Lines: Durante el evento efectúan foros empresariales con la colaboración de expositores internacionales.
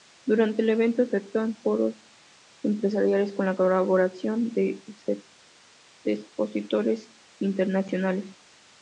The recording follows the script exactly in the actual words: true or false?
true